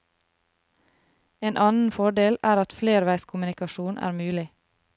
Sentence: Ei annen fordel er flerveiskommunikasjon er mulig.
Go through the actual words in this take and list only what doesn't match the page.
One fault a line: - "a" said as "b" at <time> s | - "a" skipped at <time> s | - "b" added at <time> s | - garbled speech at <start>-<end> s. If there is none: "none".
- "Ei" said as "En" at 1.4 s
- "at" added at 2.6 s